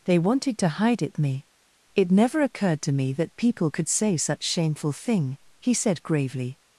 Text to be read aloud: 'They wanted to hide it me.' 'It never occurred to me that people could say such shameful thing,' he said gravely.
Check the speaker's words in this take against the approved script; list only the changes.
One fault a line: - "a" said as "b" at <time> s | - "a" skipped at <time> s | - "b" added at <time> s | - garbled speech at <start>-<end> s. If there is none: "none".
none